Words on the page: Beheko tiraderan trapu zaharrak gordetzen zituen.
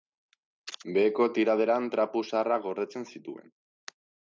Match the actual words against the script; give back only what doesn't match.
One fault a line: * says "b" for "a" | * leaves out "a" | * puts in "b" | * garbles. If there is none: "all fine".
all fine